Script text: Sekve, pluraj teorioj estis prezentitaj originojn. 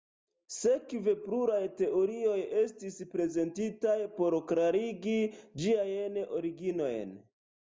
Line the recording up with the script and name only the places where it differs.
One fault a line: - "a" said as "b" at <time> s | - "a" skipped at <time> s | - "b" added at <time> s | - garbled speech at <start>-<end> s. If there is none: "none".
- "por klarigi ĝiajn" added at 4.2 s